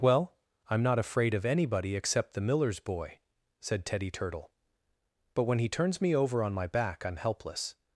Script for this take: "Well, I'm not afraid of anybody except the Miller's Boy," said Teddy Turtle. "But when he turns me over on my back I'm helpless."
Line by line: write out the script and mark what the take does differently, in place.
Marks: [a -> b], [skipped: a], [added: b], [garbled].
"Well, I'm not afraid of anybody except the Miller's Boy," said Teddy Turtle. "But when he turns me over on my back I'm helpless."